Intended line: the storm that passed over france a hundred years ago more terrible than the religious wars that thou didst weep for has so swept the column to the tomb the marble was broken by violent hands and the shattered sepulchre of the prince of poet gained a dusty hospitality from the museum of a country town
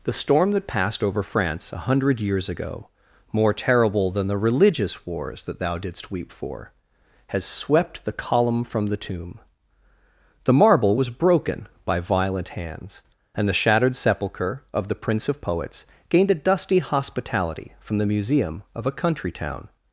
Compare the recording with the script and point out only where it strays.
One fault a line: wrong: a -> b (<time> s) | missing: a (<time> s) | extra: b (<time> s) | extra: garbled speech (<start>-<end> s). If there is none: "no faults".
missing: so (7.5 s)
wrong: to -> from (8.6 s)
wrong: poet -> poets (15.4 s)